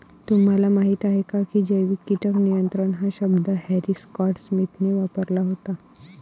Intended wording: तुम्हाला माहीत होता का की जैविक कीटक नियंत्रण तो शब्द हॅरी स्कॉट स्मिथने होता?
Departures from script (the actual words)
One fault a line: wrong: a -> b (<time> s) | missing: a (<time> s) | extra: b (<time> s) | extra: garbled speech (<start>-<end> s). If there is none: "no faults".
wrong: होता -> आहे (1.1 s)
wrong: तो -> हा (2.9 s)
extra: वापरला (4.9 s)